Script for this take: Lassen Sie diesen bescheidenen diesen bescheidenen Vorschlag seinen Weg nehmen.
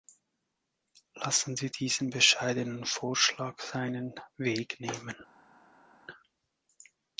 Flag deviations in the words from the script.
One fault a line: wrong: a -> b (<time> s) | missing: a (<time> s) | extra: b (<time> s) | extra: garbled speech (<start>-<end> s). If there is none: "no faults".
missing: diesen bescheidenen (2.8 s)